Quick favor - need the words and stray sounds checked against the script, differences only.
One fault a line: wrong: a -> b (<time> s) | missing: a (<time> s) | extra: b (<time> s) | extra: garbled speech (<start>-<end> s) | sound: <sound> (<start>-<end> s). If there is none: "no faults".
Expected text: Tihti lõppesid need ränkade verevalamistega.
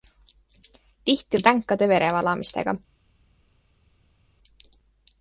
missing: lõppesid (1.4 s)